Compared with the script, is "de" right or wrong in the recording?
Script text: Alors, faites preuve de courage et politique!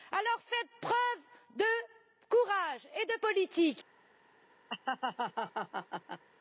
right